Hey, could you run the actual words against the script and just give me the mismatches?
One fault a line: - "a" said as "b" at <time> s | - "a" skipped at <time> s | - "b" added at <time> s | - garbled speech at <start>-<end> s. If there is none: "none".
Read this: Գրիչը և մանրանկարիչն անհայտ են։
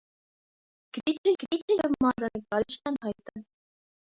- "գրիչը" added at 1.4 s